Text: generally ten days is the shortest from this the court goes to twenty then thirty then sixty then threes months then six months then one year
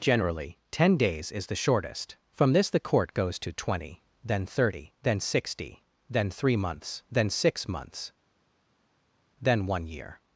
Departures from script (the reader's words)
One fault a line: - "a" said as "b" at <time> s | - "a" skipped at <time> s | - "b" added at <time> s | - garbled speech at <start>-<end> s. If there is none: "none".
- "threes" said as "three" at 6.3 s